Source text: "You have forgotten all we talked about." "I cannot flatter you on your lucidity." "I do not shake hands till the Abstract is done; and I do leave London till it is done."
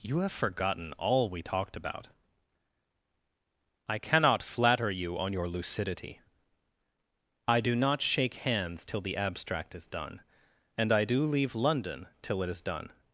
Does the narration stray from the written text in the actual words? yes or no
no